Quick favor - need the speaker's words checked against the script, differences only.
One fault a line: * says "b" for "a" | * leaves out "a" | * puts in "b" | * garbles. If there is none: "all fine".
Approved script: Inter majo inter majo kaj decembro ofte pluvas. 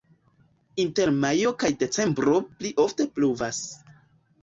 * leaves out "inter majo"
* puts in "pli"